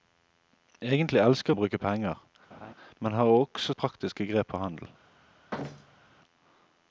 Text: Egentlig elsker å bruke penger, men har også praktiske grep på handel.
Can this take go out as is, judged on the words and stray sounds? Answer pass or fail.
fail